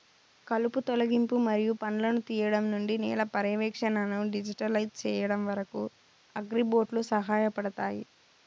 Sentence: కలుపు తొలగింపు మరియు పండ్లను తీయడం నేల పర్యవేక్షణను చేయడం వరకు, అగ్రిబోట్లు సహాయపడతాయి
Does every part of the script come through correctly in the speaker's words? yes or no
no